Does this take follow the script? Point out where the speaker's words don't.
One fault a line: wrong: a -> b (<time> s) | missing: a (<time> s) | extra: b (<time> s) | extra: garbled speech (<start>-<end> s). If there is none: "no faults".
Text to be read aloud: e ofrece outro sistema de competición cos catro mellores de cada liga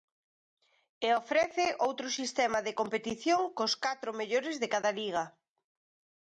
no faults